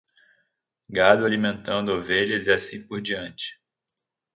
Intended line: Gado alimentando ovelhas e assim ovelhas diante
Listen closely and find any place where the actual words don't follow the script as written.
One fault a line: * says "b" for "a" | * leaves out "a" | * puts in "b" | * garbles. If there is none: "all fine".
* says "por" for "ovelhas"